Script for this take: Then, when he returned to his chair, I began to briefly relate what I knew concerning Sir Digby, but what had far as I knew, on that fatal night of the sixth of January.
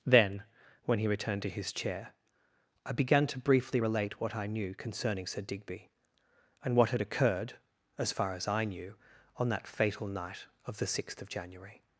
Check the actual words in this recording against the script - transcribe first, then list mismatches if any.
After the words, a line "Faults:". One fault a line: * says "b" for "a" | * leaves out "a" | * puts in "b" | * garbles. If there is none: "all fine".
Then, when he returned to his chair, I began to briefly relate what I knew concerning Sir Digby, and what had occurred, as far as I knew, on that fatal night of the sixth of January.
Faults:
* says "and" for "but"
* puts in "occurred as"